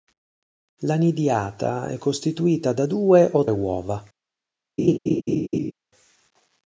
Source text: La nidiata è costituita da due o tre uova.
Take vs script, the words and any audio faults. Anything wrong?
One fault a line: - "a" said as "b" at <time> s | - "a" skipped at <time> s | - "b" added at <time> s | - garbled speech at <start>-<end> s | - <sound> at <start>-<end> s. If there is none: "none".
- "tre" skipped at 3.4 s
- laugh at 4.8-5.7 s